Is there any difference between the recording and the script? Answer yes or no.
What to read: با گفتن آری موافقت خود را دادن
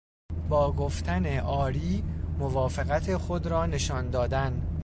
yes